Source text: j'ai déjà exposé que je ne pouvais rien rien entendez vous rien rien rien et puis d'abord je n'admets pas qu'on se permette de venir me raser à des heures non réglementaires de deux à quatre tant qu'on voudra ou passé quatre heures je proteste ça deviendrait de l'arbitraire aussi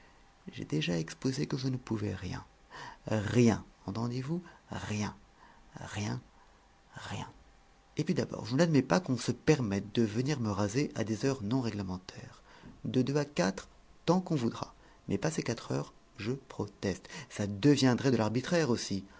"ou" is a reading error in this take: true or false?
true